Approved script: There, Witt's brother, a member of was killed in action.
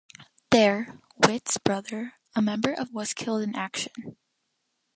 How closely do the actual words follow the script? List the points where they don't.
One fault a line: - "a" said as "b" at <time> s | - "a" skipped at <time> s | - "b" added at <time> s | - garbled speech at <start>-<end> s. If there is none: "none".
none